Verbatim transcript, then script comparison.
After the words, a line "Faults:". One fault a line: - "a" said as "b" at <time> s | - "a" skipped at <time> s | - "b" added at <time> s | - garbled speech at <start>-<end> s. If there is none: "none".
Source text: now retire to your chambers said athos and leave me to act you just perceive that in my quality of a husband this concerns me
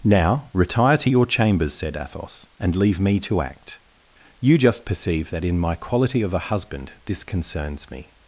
now retire to your chambers said athos and leave me to act you just perceive that in my quality of a husband this concerns me
Faults:
none